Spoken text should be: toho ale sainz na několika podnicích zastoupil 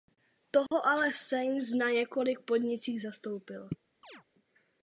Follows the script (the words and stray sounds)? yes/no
no